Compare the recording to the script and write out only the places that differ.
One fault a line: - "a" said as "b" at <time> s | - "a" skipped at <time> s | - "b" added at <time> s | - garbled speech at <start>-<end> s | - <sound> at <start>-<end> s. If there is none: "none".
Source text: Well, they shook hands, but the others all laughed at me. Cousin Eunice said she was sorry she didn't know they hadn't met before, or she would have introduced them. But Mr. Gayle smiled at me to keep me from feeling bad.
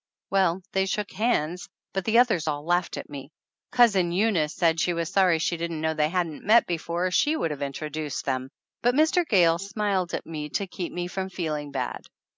none